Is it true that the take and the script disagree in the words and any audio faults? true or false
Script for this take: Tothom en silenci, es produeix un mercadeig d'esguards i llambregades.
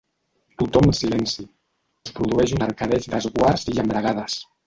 false